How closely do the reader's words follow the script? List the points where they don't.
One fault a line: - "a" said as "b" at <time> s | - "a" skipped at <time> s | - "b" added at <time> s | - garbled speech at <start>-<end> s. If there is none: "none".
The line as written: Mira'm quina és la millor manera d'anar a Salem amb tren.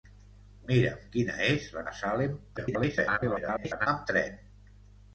- "millor manera d'anar" skipped at 1.8 s
- garbled speech at 2.6-3.9 s